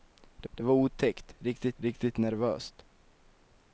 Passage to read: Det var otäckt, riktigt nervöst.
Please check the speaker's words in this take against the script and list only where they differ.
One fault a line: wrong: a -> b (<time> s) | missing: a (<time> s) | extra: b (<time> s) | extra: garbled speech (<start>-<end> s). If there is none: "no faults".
extra: det (0.5 s)
extra: riktigt (1.8 s)